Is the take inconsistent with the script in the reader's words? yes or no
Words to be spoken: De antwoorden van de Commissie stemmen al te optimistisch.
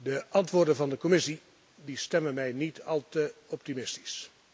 yes